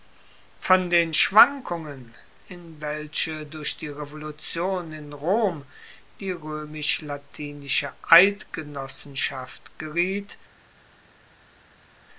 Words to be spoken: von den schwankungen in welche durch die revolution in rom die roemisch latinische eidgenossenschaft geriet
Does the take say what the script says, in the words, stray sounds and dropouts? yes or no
yes